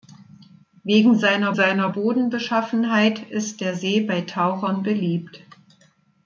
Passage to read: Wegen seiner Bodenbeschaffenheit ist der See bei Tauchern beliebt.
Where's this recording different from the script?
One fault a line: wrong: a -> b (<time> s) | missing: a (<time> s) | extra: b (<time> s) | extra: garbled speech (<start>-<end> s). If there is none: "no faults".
extra: seiner (1.5 s)